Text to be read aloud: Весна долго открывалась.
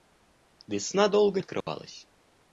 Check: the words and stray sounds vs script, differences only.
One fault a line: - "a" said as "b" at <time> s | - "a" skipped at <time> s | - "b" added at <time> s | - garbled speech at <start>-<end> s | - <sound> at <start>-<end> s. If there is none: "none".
- dropout at 1.6-1.7 s